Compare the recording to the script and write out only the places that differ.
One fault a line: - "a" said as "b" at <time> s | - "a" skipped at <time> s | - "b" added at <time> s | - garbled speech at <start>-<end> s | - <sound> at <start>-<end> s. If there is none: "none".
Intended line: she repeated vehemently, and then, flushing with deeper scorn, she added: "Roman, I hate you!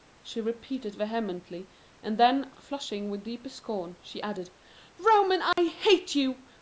- dropout at 5.5-5.6 s